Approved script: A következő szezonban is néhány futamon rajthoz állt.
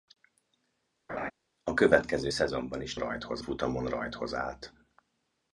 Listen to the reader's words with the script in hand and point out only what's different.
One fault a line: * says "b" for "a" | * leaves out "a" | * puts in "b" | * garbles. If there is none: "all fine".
* says "rajthoz" for "néhány"